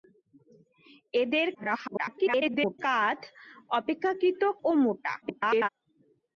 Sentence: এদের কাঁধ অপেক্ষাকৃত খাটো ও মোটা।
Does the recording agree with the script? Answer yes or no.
no